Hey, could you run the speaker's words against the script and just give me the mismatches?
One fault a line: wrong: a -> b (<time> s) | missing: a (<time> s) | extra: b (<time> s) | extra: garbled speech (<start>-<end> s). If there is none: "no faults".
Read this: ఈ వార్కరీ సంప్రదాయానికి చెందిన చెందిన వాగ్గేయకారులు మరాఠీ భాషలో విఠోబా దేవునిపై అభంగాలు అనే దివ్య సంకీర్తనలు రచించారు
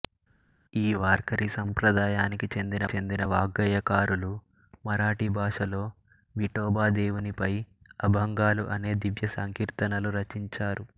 no faults